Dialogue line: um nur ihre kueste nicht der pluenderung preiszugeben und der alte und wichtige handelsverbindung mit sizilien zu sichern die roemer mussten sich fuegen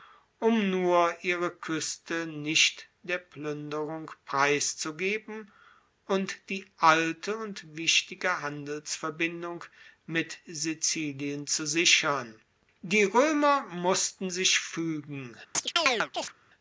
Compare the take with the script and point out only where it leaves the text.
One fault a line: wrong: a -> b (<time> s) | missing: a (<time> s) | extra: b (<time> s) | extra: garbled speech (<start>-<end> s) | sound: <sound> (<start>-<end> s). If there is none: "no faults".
wrong: der -> die (6.5 s)
sound: chirp (15.5-16.3 s)